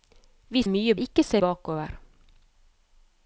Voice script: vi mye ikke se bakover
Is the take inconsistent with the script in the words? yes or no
no